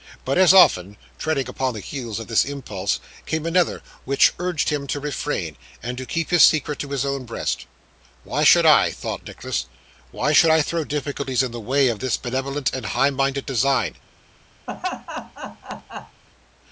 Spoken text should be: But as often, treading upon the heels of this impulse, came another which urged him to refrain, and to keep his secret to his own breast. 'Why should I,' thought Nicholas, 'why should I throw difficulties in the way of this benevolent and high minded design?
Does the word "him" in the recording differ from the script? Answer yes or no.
no